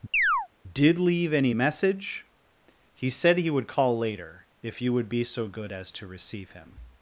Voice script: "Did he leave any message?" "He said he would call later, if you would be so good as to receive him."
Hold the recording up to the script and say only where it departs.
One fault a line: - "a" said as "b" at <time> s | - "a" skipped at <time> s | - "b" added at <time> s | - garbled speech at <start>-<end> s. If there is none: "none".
- "he" skipped at 1.0 s